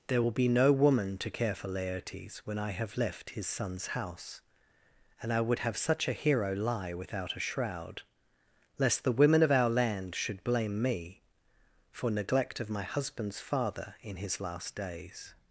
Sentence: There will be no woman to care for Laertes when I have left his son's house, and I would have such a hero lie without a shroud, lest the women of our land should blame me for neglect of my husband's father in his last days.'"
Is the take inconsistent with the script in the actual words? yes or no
no